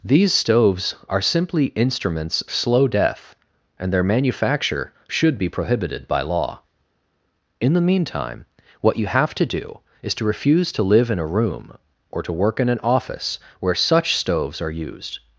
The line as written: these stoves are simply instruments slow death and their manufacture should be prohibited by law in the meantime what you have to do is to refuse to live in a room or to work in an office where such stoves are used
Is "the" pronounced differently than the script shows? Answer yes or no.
no